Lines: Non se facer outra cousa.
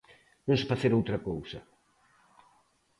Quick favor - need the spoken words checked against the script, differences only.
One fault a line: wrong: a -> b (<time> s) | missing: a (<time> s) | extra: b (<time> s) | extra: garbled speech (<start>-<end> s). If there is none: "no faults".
no faults